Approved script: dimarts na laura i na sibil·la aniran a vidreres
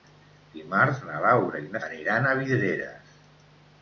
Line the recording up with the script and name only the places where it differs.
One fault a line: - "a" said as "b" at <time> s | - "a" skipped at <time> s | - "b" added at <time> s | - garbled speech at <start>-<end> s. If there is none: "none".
- "sibil·la" skipped at 1.8 s